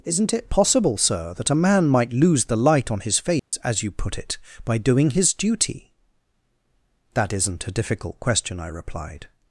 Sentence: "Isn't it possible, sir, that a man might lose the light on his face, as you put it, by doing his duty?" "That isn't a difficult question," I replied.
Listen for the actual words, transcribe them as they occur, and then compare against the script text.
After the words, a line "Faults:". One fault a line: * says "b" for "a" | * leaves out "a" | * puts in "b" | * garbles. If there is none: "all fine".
"Isn't it possible, sir, that a man might lose the light on his face, as you put it, by doing his duty?" "That isn't a difficult question," I replied.
Faults:
all fine